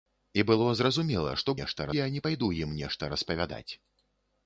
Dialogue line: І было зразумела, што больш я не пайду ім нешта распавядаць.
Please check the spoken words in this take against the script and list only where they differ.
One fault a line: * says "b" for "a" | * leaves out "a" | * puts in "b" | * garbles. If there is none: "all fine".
* says "нешта" for "больш"